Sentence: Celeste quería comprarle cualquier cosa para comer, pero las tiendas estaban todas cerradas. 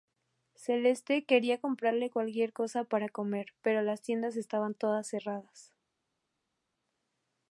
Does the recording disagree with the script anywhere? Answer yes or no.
no